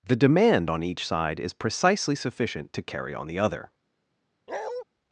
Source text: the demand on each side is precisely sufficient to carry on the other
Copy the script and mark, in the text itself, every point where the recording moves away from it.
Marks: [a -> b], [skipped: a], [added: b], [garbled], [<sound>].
the demand on each side is precisely sufficient to carry on the other [bark]